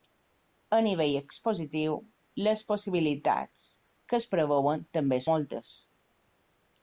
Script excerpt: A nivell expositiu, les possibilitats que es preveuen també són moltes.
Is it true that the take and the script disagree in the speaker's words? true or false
true